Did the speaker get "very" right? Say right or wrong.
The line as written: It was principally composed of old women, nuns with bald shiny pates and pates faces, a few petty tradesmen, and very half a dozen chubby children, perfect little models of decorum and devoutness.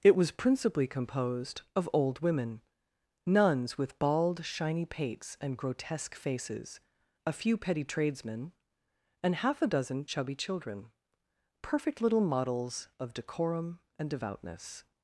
wrong